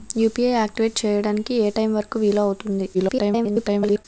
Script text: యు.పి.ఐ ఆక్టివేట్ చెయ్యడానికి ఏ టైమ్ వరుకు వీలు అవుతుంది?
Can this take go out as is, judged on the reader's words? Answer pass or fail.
fail